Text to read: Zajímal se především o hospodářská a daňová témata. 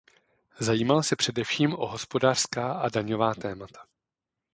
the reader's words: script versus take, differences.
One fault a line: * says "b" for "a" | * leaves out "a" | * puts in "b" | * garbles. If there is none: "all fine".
all fine